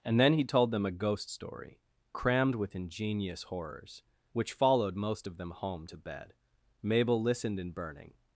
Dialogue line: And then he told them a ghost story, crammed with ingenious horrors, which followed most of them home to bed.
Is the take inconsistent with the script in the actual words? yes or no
yes